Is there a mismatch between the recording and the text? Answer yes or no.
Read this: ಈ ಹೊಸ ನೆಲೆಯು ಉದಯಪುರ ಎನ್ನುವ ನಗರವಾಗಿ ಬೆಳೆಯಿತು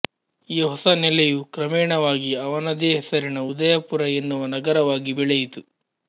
yes